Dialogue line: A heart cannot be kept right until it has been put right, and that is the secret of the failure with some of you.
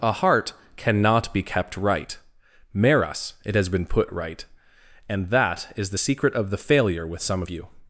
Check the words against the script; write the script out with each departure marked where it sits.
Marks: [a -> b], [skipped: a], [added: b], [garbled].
A heart cannot be kept right [until -> meras] it has been put right, and that is the secret of the failure with some of you.